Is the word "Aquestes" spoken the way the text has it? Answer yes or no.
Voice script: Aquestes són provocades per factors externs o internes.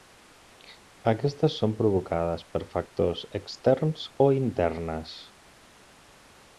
yes